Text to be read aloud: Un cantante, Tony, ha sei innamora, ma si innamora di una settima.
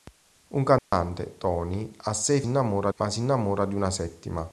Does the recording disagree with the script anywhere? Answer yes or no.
no